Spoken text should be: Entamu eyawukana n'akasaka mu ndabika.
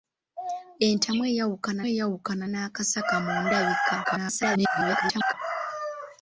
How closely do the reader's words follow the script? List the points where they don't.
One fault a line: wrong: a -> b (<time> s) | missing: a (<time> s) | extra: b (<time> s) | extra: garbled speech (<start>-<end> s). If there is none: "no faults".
extra: eyawukana (1.9 s)
extra: garbled speech (4.0-5.3 s)